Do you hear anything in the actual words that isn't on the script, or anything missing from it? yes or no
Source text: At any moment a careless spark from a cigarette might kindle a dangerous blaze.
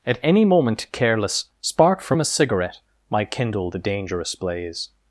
yes